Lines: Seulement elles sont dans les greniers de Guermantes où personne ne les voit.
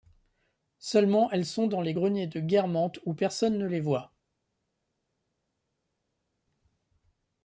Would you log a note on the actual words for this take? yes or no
no